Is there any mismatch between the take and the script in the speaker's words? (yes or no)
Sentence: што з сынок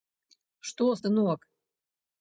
no